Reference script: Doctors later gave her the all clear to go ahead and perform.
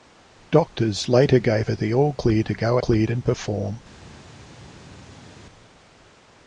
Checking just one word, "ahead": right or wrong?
wrong